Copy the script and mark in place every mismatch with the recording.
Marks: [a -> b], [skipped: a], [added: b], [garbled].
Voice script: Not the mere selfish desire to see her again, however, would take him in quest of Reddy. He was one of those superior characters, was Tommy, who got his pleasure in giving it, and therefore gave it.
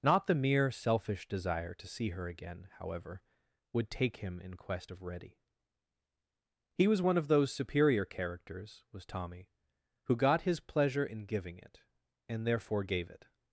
Not the mere selfish desire to see her again, however, would take him in quest of Reddy. He was one of those superior characters, was Tommy, who got his pleasure in giving it, and therefore gave it.